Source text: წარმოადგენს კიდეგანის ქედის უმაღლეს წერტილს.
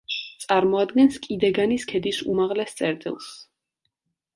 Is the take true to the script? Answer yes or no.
yes